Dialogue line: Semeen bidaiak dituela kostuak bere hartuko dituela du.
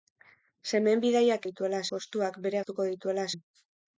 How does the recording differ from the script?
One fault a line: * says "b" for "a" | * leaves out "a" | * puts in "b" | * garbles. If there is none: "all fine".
all fine